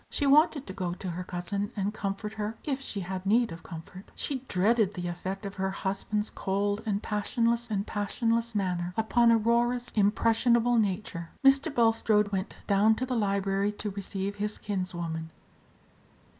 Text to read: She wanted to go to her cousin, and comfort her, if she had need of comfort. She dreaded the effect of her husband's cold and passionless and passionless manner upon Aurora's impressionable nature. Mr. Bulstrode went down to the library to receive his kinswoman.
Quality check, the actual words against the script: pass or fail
pass